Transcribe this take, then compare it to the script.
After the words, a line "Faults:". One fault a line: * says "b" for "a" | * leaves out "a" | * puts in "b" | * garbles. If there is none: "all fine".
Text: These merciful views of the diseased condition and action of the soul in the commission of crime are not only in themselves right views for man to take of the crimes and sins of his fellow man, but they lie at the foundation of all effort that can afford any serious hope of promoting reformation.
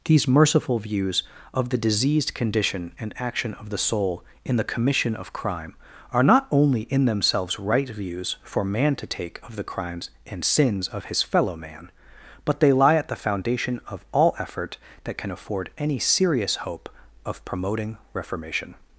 These merciful views of the diseased condition and action of the soul in the commission of crime are not only in themselves right views for man to take of the crimes and sins of his fellow man, but they lie at the foundation of all effort that can afford any serious hope of promoting reformation.
Faults:
all fine